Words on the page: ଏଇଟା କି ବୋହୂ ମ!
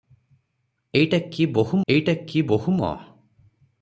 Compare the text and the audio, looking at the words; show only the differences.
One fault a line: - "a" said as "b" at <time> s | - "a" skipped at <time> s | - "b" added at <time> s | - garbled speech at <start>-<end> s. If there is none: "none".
- "ଏଇଟା କି ବୋହୂ" added at 1.9 s